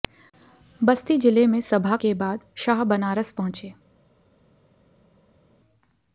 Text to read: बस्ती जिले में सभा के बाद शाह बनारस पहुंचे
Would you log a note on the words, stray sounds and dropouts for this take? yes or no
no